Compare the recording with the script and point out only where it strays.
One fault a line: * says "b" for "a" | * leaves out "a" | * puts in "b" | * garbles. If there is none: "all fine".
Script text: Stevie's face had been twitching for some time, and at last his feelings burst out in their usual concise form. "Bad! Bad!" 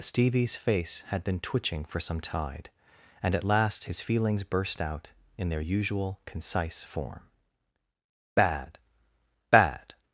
* says "tide" for "time"